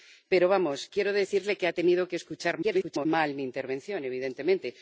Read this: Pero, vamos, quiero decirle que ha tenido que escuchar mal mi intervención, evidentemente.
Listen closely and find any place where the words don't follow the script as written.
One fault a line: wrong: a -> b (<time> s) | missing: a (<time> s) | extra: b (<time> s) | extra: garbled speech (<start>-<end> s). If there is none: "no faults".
extra: garbled speech (2.6-3.1 s)